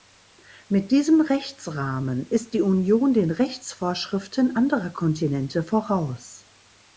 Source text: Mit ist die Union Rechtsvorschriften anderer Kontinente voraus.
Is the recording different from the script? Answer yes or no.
yes